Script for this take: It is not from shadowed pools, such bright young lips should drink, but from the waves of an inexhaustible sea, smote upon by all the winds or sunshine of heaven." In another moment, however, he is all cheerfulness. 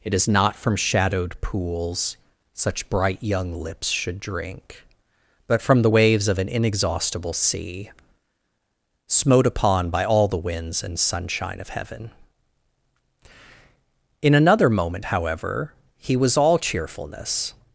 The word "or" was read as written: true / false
false